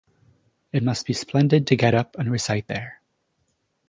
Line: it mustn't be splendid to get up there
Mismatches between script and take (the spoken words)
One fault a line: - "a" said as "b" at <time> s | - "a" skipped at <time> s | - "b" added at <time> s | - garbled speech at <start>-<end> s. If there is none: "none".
- "mustn't" said as "must" at 0.8 s
- "and recite" added at 2.2 s